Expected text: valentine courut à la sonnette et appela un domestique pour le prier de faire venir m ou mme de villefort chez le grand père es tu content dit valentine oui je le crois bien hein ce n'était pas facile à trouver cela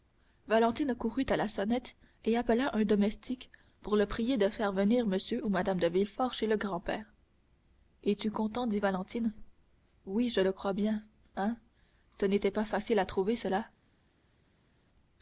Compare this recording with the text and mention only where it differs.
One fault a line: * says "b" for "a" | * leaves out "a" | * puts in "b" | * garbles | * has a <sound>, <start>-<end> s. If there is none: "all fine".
all fine